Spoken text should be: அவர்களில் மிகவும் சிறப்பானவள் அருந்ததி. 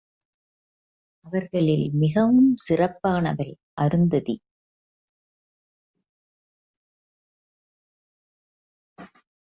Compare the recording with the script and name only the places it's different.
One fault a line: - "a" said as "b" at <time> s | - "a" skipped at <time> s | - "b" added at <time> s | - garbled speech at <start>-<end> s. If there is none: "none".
none